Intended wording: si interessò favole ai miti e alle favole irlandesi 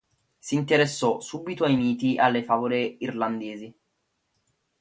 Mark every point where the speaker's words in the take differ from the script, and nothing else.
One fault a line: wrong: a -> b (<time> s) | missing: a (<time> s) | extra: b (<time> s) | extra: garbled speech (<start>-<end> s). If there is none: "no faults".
wrong: favole -> subito (1.2 s)